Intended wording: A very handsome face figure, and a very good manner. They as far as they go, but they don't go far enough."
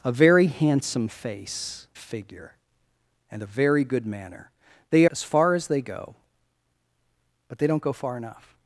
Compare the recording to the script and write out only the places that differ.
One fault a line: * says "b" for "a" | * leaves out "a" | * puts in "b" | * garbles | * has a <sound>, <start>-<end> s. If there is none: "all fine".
all fine